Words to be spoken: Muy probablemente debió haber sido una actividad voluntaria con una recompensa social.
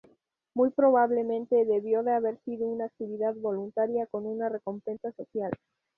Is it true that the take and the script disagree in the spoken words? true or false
true